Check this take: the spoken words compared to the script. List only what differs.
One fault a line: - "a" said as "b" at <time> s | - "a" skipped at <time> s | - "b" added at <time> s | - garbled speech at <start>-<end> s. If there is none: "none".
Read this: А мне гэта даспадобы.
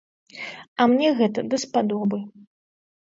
none